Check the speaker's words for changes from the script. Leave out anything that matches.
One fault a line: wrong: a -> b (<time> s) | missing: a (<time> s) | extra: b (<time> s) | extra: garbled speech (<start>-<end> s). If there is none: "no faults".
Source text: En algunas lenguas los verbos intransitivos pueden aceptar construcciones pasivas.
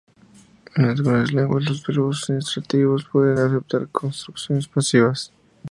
no faults